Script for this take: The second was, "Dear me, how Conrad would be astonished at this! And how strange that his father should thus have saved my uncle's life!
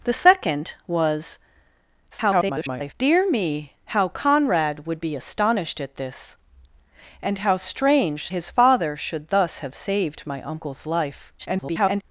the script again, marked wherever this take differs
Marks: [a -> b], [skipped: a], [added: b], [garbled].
The second was, [garbled] "Dear me, how Conrad would be astonished at this! And how strange [skipped: that] his father should thus have saved my uncle's life! [garbled]